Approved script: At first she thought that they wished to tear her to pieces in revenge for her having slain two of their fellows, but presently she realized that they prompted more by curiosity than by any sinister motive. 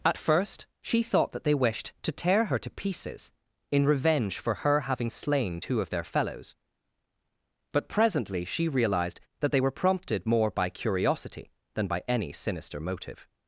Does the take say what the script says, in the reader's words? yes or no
no